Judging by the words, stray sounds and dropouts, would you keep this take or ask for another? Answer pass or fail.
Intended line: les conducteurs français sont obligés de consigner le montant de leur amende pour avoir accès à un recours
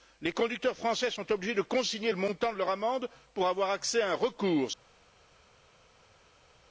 pass